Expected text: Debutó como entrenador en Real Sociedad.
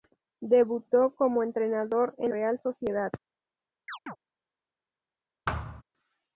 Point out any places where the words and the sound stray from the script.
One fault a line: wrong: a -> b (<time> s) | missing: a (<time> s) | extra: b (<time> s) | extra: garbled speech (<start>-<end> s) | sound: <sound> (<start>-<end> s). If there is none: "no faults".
sound: chirp (3.9-4.2 s)
sound: thud (5.5-5.8 s)